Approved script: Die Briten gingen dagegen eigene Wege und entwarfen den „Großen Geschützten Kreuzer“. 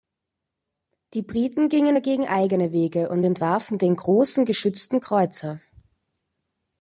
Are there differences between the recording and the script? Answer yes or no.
no